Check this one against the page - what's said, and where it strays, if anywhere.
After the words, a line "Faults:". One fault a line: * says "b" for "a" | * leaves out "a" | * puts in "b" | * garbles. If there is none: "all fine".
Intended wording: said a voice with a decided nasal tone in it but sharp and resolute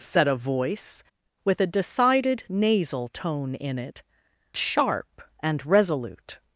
said a voice with a decided nasal tone in it sharp and resolute
Faults:
* leaves out "but"